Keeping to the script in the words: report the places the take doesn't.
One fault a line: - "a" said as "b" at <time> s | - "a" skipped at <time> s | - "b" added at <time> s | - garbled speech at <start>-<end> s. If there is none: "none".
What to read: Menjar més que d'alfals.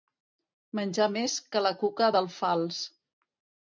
- "la cuca" added at 1.7 s